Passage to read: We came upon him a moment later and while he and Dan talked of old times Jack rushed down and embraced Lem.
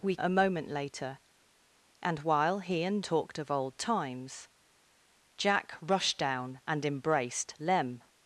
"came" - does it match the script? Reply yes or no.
no